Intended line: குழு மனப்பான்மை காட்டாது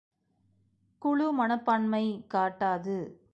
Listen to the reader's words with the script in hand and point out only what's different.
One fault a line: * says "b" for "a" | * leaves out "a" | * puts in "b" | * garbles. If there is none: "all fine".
all fine